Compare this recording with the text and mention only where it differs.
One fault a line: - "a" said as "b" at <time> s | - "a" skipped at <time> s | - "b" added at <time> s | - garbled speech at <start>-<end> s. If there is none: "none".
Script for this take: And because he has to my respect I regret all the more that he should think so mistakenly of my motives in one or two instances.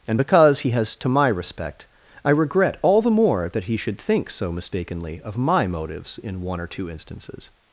none